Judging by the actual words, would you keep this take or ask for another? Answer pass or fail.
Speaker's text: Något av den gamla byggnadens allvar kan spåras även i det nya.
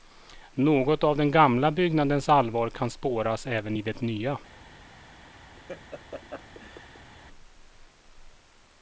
pass